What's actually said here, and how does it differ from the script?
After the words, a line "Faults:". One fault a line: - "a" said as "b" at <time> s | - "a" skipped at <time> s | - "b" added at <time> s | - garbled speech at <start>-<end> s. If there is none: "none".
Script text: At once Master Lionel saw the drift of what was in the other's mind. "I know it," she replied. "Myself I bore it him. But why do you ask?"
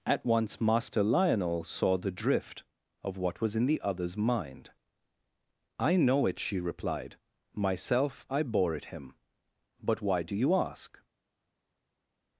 At once Master Lionel saw the drift of what was in the other's mind. "I know it," she replied. "Myself I bore it him. But why do you ask?"
Faults:
none